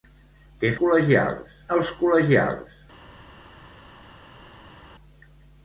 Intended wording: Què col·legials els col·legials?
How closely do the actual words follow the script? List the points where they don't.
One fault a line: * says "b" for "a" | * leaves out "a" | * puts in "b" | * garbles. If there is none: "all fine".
all fine